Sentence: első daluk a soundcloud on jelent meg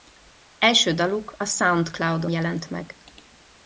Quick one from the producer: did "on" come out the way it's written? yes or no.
no